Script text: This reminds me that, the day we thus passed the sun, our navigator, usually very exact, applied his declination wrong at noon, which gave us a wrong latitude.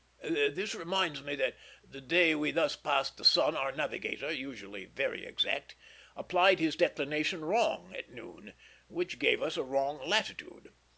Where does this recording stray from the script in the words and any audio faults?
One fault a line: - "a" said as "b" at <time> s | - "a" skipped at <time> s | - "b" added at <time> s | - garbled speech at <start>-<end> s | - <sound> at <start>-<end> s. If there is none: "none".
none